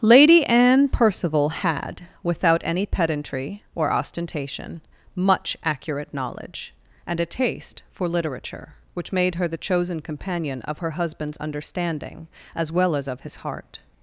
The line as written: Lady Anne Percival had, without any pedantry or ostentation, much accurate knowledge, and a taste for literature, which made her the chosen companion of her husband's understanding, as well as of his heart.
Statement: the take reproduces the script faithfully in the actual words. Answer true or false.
true